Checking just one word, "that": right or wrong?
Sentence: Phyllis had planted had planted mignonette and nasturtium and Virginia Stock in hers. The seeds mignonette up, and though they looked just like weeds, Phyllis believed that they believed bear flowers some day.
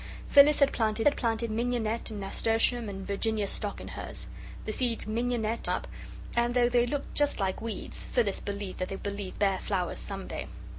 right